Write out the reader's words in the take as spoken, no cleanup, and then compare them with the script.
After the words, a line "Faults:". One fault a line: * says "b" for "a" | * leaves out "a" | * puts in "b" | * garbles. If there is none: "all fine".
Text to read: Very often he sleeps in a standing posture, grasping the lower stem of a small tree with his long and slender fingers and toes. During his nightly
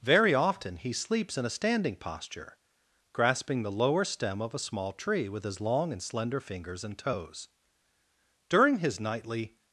Very often he sleeps in a standing posture, grasping the lower stem of a small tree with his long and slender fingers and toes. During his nightly
Faults:
all fine